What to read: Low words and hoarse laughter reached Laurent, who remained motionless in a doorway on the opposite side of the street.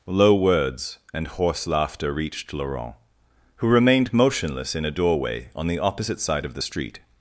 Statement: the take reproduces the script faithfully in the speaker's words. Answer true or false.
true